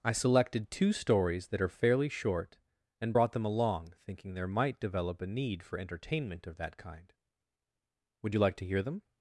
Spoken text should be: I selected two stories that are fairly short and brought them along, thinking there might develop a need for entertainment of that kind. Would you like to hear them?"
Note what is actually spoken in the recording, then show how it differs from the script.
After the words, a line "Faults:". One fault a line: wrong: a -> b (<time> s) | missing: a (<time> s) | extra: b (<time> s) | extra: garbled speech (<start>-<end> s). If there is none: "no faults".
I selected two stories that are fairly short and brought them along, thinking there might develop a need for entertainment of that kind. Would you like to hear them?"
Faults:
no faults